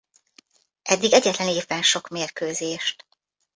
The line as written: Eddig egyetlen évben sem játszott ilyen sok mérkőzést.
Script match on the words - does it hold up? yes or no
no